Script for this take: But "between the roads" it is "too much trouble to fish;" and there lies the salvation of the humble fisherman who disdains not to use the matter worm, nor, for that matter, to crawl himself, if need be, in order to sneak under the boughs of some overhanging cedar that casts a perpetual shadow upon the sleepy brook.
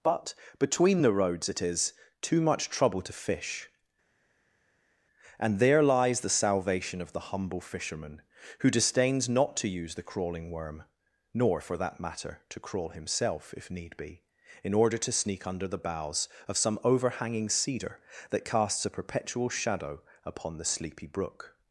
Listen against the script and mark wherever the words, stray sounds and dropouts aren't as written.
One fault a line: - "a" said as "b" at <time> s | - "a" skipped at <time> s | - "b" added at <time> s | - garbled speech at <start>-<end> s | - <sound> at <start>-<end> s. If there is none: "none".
- "matter" said as "crawling" at 10.0 s